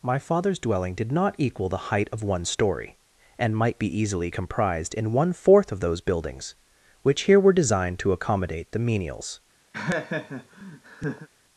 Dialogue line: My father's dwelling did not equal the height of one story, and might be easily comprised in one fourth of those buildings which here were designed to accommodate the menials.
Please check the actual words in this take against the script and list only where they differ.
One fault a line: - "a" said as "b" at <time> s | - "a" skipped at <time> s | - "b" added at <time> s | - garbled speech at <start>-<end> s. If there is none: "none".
none